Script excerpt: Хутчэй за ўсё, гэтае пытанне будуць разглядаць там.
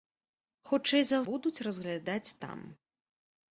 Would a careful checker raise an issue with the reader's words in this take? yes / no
yes